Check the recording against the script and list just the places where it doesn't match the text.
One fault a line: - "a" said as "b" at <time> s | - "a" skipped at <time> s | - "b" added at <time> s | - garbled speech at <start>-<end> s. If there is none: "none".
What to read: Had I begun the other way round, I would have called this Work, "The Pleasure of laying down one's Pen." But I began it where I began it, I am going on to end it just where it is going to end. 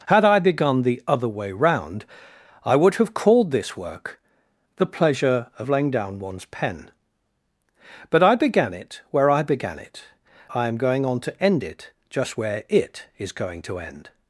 none